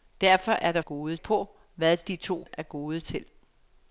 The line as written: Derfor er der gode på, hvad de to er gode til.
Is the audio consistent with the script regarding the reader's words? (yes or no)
yes